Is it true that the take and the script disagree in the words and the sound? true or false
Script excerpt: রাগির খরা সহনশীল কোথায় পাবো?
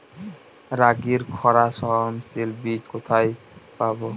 true